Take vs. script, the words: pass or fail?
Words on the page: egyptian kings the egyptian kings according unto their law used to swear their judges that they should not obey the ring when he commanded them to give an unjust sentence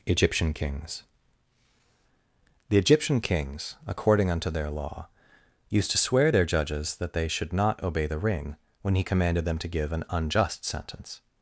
pass